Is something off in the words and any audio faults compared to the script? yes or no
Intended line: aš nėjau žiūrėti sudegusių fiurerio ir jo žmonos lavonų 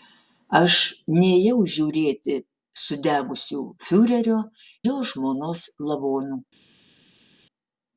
yes